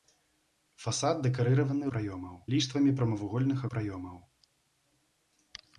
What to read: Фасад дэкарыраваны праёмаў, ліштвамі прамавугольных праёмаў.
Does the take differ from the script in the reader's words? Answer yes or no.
no